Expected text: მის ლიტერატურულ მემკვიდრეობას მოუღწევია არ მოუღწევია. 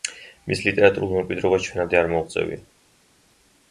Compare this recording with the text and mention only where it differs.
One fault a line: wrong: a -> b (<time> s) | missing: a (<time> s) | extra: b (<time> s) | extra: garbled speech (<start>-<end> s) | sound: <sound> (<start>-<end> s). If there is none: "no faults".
wrong: მოუღწევია -> ჩვენამდე (1.7 s)